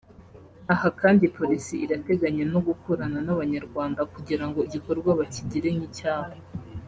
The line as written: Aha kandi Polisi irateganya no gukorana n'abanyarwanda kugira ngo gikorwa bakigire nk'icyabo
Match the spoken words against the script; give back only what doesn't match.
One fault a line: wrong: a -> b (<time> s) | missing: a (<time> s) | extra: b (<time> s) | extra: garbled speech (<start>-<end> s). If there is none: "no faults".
no faults